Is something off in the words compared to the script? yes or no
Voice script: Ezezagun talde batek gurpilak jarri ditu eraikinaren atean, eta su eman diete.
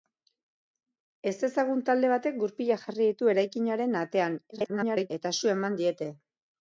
yes